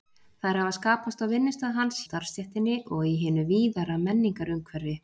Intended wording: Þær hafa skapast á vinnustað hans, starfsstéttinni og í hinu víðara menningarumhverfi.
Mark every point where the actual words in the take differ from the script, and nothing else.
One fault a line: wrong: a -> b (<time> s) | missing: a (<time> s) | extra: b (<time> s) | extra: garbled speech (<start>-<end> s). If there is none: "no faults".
no faults